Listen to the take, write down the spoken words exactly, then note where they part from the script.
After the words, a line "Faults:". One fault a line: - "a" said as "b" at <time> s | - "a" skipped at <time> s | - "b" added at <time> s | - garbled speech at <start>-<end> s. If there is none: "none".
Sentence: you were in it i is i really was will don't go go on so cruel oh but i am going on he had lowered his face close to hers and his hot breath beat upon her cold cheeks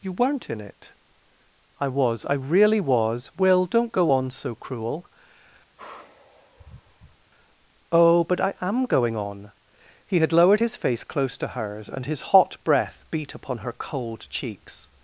you weren't in it i was i really was will don't go on so cruel oh but i am going on he had lowered his face close to hers and his hot breath beat upon her cold cheeks
Faults:
- "were" said as "weren't" at 0.1 s
- "is" said as "was" at 1.9 s
- "go" skipped at 4.1 s